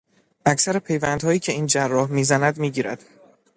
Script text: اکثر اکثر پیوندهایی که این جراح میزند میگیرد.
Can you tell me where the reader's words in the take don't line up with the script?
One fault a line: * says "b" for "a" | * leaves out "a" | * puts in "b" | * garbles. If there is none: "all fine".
* leaves out "اکثر"